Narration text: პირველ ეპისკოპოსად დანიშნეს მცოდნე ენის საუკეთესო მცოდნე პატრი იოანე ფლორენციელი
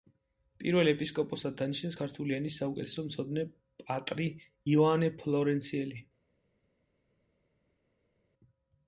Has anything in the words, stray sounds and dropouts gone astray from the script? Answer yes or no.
yes